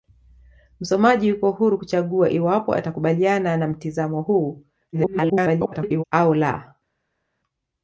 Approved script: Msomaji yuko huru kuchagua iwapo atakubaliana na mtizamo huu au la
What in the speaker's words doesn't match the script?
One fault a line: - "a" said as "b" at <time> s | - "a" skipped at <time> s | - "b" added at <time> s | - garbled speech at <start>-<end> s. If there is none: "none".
- garbled speech at 4.9-6.0 s